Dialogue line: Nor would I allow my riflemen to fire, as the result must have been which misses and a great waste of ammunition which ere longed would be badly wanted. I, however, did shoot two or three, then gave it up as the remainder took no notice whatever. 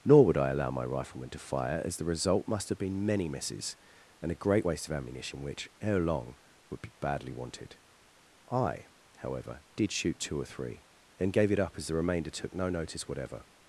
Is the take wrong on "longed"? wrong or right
wrong